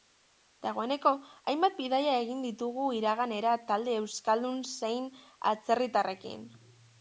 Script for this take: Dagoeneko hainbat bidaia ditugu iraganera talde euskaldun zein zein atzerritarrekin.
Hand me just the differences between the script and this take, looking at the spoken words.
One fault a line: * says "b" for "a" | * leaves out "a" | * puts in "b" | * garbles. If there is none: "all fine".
* puts in "egin"
* leaves out "zein"